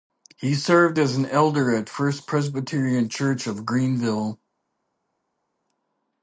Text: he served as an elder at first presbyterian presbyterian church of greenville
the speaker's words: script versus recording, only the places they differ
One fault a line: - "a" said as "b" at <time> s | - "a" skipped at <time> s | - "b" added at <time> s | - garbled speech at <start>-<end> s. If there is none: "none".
- "presbyterian" skipped at 3.1 s